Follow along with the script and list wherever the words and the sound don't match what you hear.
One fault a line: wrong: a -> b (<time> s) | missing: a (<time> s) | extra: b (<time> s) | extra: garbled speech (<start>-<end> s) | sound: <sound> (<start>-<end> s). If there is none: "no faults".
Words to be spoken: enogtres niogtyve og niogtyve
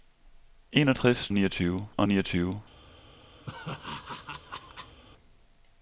sound: laugh (3.5-5.0 s)